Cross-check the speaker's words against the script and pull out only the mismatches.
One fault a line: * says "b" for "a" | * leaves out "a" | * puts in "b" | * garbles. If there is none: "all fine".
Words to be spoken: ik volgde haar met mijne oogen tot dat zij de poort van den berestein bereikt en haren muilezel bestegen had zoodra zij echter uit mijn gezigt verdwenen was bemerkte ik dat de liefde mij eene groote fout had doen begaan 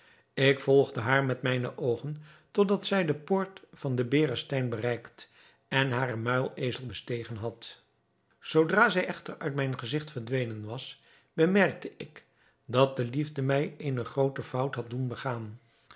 all fine